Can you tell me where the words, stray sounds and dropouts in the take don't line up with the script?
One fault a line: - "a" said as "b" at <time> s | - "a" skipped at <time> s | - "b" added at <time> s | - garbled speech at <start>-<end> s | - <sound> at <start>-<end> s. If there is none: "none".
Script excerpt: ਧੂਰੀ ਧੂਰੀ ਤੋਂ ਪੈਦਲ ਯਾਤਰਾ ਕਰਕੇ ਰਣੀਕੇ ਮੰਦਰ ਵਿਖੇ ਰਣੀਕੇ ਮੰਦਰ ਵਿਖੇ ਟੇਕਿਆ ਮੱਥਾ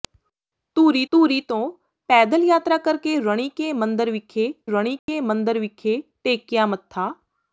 - dropout at 5.0-5.1 s